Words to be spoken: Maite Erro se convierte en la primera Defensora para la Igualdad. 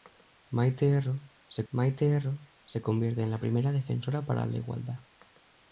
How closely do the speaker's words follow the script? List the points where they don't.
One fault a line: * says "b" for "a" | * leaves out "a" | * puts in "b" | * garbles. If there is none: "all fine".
* puts in "maite Erro se"